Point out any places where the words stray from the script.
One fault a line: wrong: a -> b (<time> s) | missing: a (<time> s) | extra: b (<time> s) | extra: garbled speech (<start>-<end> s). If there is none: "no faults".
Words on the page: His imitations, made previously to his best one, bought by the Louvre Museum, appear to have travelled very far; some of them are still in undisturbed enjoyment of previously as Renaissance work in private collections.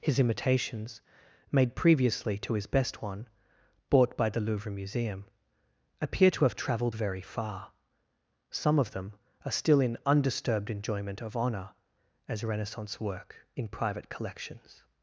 wrong: previously -> honour (11.3 s)